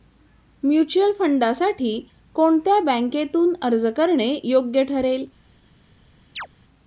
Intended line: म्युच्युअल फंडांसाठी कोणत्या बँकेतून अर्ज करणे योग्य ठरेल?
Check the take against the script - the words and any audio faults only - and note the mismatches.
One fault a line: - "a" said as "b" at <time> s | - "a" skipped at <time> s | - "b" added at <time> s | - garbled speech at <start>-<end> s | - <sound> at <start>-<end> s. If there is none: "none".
- chirp at 6.4-6.5 s